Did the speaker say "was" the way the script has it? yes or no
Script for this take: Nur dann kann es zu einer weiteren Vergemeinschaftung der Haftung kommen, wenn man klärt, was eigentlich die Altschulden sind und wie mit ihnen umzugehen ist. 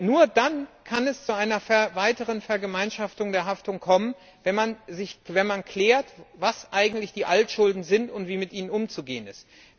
yes